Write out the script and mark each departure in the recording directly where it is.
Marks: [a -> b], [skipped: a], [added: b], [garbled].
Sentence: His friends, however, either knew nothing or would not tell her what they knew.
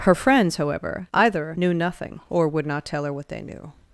[His -> Her] friends, however, either knew nothing or would not tell her what they knew.